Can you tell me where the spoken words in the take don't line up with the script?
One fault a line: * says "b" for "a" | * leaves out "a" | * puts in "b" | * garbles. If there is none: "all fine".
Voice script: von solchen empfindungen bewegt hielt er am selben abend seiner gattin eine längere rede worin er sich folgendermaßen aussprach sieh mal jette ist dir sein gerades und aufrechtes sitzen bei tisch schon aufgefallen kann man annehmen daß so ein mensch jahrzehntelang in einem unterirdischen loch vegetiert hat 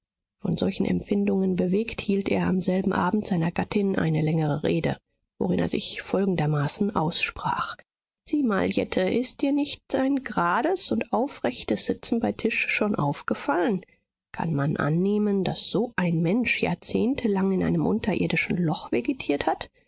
* puts in "nicht"